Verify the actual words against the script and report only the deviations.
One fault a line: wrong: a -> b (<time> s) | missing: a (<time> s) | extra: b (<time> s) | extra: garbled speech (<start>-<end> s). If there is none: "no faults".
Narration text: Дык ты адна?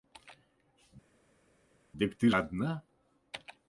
no faults